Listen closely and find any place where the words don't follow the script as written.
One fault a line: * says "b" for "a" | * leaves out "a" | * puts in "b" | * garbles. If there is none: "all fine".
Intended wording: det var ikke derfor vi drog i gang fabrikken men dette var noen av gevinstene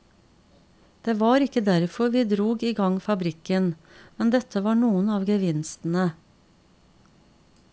all fine